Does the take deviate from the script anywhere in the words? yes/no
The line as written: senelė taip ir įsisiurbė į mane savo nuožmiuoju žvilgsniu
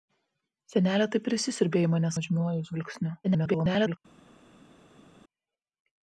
yes